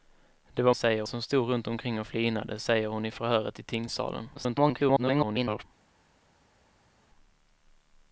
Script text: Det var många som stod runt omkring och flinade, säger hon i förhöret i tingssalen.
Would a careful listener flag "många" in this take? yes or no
yes